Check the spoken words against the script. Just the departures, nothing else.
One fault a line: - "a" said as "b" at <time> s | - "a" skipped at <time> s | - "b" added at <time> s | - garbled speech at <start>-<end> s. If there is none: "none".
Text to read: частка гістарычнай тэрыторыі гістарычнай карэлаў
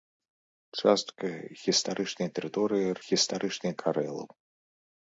none